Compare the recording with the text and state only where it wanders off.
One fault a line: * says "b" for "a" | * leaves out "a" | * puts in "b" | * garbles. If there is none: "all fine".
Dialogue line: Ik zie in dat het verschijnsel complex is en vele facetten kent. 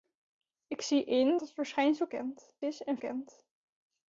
* leaves out "dat"
* says "kent" for "complex"
* leaves out "vele facetten"